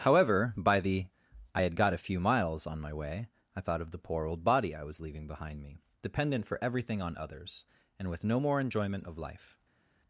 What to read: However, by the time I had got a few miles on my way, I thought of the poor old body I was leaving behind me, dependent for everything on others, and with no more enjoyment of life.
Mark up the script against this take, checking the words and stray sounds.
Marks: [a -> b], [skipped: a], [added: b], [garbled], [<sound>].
However, by the [skipped: time] I had got a few miles on my way, I thought of the poor old body I was leaving behind me, dependent for everything on others, and with no more enjoyment of life.